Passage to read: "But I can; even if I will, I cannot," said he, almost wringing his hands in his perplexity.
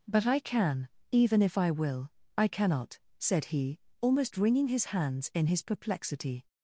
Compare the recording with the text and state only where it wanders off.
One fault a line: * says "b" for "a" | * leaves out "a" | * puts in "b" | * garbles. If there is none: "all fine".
all fine